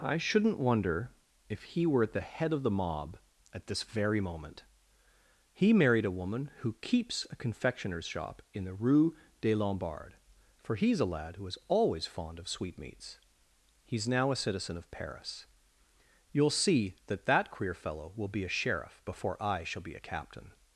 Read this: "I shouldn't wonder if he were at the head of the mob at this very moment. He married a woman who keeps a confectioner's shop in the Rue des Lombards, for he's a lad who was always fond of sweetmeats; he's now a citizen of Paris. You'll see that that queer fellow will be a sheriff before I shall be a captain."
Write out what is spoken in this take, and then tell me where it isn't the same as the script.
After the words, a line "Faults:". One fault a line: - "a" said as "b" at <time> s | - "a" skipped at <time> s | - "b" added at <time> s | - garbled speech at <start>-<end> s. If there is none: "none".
"I shouldn't wonder if he were at the head of the mob at this very moment. He married a woman who keeps a confectioner's shop in the Rue des Lombards, for he's a lad who is always fond of sweetmeats; he's now a citizen of Paris. You'll see that that queer fellow will be a sheriff before I shall be a captain."
Faults:
- "was" said as "is" at 11.4 s